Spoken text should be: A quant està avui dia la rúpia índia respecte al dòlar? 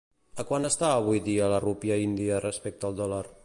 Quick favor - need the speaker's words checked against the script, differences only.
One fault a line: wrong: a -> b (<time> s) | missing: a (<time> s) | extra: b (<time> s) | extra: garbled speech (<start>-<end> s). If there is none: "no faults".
no faults